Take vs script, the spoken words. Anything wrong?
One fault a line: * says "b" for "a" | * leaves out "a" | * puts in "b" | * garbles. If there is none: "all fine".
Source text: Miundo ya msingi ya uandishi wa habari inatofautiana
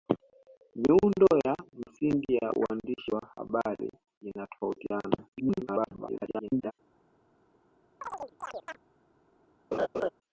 * garbles